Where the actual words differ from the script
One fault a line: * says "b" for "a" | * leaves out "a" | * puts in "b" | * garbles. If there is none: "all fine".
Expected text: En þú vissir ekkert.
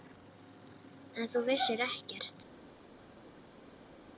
all fine